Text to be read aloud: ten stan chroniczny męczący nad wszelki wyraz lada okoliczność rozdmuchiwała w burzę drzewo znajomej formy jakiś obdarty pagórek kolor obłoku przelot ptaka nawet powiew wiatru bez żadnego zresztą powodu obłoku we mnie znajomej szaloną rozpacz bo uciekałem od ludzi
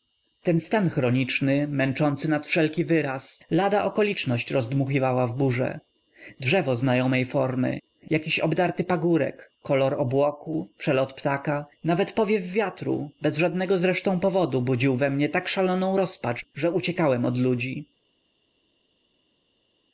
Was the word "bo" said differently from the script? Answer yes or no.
yes